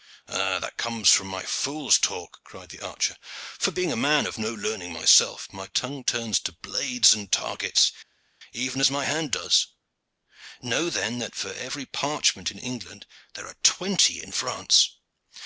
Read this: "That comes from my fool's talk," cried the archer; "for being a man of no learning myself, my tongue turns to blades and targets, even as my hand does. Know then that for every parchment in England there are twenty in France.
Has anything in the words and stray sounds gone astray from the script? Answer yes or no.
no